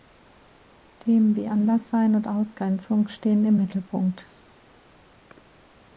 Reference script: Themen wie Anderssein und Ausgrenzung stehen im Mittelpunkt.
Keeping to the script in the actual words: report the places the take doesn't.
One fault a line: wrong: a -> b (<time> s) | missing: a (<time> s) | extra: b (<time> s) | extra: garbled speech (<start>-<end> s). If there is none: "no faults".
no faults